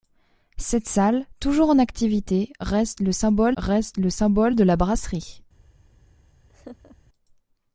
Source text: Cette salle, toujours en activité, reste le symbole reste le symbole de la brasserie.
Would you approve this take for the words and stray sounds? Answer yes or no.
no